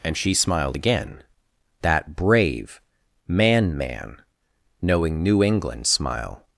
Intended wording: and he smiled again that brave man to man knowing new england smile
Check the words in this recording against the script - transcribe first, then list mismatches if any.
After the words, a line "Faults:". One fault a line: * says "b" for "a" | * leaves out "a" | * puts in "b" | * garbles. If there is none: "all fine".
and she smiled again that brave man man knowing new england smile
Faults:
* says "she" for "he"
* leaves out "to"